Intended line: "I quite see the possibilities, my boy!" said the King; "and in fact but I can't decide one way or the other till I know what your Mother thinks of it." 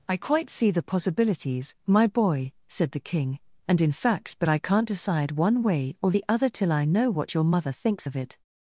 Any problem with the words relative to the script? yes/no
no